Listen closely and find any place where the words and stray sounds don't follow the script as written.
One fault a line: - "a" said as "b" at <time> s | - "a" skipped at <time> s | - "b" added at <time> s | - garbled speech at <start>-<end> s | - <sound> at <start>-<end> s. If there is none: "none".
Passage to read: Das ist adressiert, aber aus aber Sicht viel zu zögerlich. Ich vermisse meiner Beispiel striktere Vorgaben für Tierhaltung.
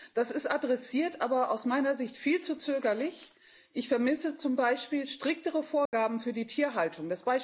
- "aber" said as "meiner" at 1.6 s
- "meiner" said as "zum" at 4.4 s
- dropout at 5.9-5.9 s
- "die" added at 6.3 s